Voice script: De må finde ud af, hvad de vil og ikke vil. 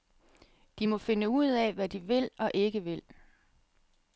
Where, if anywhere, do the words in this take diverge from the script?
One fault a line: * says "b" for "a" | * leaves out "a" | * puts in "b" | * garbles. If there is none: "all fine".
all fine